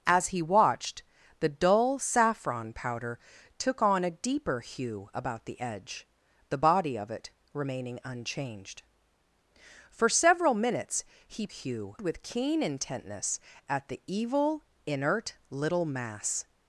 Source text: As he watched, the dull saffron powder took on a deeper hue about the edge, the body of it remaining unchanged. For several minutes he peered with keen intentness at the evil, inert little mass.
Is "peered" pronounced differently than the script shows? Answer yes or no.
yes